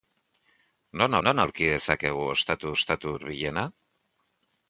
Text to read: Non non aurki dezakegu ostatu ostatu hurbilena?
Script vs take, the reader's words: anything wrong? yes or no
no